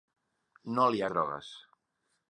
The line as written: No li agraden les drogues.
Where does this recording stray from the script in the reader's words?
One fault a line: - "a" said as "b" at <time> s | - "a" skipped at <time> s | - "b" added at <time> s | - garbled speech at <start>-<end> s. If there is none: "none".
- "agraden les" skipped at 1.0 s